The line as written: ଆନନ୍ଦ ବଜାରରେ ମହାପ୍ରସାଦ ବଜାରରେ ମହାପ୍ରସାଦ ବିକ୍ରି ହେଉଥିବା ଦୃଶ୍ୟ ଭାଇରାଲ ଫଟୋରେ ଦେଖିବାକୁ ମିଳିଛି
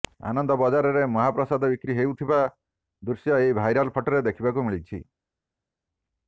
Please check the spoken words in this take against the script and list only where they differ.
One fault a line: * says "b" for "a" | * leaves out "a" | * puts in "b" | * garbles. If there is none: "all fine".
* leaves out "ବଜାରରେ ମହାପ୍ରସାଦ"
* puts in "ଏହି"